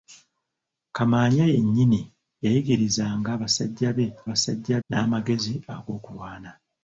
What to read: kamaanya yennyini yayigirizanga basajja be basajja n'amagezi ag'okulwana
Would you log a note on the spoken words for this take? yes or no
no